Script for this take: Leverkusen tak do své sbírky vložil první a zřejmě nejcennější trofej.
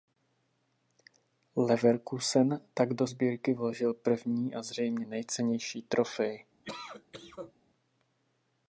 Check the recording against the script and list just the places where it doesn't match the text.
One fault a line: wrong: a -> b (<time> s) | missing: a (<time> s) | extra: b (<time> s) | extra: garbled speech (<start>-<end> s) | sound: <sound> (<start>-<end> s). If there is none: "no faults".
missing: své (3.1 s)
sound: cough (6.6-7.5 s)